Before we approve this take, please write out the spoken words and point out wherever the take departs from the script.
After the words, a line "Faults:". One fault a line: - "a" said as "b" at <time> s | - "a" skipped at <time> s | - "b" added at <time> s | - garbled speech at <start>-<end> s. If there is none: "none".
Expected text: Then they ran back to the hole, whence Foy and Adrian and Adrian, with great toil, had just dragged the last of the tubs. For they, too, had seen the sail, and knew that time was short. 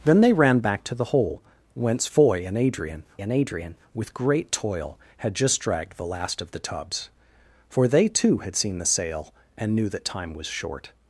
Then they ran back to the hole, whence Foy and Adrian and Adrian, with great toil, had just dragged the last of the tubs. For they, too, had seen the sail, and knew that time was short.
Faults:
none